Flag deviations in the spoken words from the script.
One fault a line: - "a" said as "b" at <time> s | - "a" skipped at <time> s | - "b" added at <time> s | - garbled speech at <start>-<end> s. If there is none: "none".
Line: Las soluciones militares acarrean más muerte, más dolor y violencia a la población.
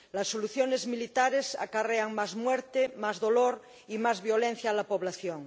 - "más" added at 4.0 s